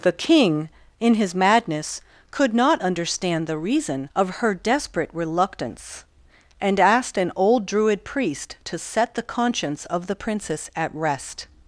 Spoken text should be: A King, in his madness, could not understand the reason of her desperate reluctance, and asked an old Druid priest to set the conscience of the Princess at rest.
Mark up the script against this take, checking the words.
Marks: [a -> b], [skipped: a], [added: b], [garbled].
[A -> The] King, in his madness, could not understand the reason of her desperate reluctance, and asked an old Druid priest to set the conscience of the Princess at rest.